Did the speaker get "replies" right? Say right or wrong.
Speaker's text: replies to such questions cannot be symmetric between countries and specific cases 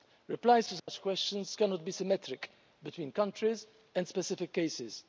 right